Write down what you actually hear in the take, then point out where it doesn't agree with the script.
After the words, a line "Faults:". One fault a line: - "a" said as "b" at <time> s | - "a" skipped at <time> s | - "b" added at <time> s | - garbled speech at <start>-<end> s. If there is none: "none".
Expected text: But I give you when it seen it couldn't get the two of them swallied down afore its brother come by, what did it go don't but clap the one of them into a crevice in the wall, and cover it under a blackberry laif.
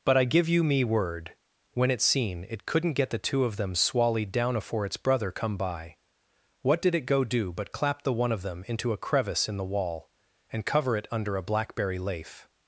But I give you me word, when it seen it couldn't get the two of them swallied down afore its brother come by, what did it go do but clap the one of them into a crevice in the wall, and cover it under a blackberry laif.
Faults:
- "me word" added at 0.6 s
- "don't" said as "do" at 7.2 s